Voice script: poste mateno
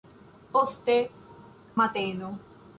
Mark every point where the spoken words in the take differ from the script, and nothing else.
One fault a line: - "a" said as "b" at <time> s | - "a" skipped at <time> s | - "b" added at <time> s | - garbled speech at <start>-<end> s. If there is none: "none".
none